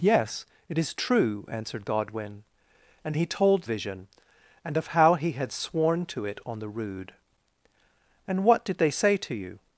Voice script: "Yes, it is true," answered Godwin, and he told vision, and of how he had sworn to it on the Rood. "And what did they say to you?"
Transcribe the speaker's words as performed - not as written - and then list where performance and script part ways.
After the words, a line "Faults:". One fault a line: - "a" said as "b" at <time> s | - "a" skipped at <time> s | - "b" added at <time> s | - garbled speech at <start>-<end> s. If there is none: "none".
"Yes, it is true," answered Godwin, and he told vision, and of how he had sworn to it on the Rood. "And what did they say to you?"
Faults:
none